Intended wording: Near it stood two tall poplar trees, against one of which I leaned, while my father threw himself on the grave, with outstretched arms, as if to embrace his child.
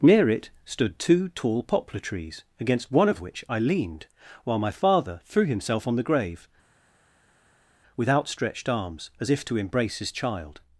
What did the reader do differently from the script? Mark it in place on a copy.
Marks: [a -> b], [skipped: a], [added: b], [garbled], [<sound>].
Near it stood two tall poplar trees, against one of which I leaned, while my father threw himself on the grave, with outstretched arms, as if to embrace his child.